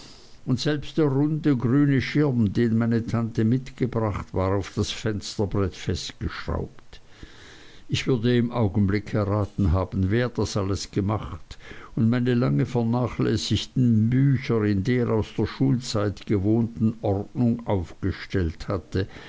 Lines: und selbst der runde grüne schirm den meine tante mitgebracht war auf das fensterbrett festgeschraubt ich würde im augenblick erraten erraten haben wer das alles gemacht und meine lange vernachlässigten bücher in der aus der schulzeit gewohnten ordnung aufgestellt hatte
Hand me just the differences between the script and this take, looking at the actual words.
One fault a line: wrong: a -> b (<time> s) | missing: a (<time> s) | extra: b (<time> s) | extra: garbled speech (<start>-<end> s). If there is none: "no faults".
missing: erraten (9.7 s)